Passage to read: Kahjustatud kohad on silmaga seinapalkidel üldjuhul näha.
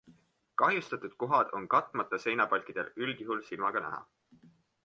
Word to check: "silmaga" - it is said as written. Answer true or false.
false